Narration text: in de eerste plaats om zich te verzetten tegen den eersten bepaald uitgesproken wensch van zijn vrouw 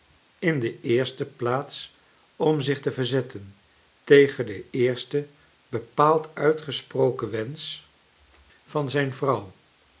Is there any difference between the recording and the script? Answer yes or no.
no